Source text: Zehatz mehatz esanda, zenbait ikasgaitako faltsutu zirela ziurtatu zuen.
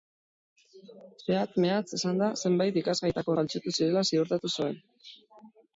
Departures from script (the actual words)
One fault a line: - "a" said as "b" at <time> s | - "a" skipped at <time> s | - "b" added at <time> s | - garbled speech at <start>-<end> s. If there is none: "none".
none